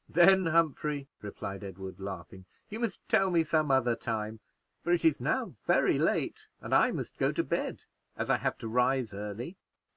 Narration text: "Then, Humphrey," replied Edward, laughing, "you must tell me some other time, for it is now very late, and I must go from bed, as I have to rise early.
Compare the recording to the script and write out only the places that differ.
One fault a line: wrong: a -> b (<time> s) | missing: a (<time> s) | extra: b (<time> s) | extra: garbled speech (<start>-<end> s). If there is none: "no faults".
wrong: from -> to (7.3 s)